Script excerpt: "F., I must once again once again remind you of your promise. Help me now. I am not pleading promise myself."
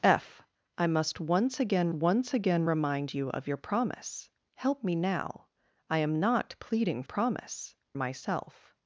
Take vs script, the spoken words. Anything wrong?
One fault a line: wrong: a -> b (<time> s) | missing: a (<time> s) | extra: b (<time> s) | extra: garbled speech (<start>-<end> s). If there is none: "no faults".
no faults